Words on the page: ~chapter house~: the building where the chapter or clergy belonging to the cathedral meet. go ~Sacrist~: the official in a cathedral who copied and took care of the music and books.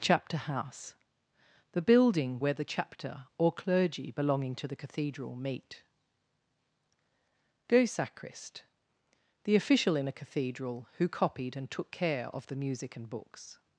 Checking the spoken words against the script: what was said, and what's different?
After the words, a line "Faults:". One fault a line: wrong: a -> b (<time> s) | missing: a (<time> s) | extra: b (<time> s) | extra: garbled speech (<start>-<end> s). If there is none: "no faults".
~chapter house~: the building where the chapter or clergy belonging to the cathedral meet. go ~Sacrist~: the official in a cathedral who copied and took care of the music and books.
Faults:
no faults